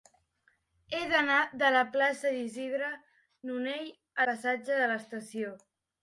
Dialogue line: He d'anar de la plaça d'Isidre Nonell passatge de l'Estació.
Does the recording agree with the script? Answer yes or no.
yes